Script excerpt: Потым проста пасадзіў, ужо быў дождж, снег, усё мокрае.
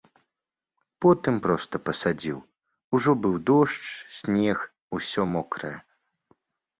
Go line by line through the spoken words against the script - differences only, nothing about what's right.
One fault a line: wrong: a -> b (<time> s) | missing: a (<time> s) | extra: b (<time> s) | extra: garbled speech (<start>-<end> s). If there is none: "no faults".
no faults